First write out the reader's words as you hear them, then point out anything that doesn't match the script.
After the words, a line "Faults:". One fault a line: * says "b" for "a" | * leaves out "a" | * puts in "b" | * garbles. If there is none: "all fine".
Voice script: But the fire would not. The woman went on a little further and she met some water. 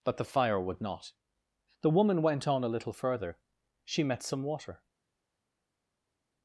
But the fire would not. The woman went on a little further she met some water.
Faults:
* leaves out "and"